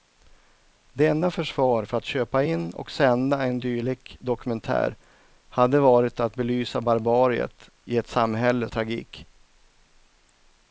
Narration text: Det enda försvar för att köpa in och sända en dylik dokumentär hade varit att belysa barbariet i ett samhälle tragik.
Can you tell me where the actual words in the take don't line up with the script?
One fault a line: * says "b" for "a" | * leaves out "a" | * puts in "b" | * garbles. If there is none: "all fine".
all fine